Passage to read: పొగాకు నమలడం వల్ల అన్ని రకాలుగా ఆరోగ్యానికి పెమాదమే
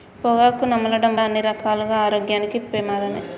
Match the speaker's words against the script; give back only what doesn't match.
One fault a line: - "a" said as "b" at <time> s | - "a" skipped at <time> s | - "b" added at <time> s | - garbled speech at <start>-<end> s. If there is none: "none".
- "వల్ల" skipped at 1.1 s